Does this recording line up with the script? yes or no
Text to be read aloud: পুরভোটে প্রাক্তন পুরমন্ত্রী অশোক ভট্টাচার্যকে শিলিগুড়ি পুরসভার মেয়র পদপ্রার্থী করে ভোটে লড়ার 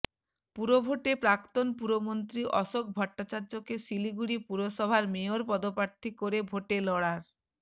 yes